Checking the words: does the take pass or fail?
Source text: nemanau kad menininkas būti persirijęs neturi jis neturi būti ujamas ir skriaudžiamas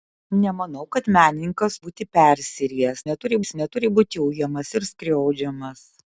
pass